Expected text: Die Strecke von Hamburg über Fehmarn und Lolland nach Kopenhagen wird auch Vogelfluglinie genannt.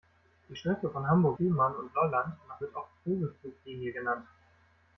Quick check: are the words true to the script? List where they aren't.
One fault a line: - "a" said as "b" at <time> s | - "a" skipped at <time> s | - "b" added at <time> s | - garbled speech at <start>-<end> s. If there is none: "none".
- "über" skipped at 1.4 s
- "Kopenhagen" skipped at 2.6 s